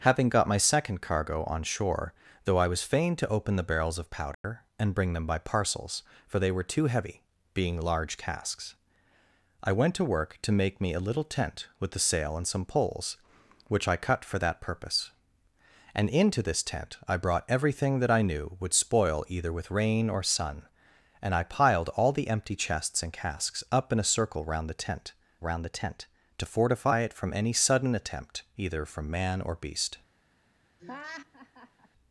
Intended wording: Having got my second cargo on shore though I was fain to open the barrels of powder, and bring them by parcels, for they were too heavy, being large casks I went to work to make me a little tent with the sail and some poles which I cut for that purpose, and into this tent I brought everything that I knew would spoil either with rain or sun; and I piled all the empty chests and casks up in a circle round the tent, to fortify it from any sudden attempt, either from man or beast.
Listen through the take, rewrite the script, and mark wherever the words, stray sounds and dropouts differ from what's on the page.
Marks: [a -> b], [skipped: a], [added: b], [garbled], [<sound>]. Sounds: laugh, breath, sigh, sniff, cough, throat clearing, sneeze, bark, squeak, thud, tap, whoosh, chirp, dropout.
Having got my second cargo on shore though I was fain to open the barrels of powder, [dropout] and bring them by parcels, for they were too heavy, being large casks I went to work to make me a little tent with the sail and some poles which I cut for that purpose, and into this tent I brought everything that I knew would spoil either with rain or sun; and I piled all the empty chests and casks up in a circle round the tent, [added: round the tent] to fortify it from any sudden attempt, either from man or beast. [laugh]